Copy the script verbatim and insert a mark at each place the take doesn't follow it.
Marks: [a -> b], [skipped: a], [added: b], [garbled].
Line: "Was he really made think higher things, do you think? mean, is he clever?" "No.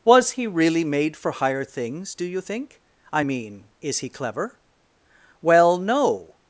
"Was he really made [think -> for] higher things, do you think? [added: I] mean, is he clever?" [added: Well] "No.